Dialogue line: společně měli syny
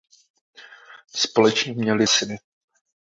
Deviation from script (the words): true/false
false